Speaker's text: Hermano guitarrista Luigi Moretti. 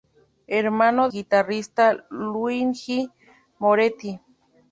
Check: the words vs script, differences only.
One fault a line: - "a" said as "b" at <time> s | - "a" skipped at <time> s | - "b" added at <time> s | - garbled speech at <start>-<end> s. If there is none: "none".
none